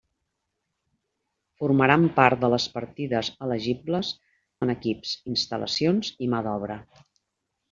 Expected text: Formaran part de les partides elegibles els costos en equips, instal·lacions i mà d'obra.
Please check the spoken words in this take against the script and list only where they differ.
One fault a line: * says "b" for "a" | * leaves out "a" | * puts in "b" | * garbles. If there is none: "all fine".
* leaves out "els costos"